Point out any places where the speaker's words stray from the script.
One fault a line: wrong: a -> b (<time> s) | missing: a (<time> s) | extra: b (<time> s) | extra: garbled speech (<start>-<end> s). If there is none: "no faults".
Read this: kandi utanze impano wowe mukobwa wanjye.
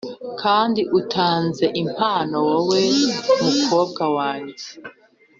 no faults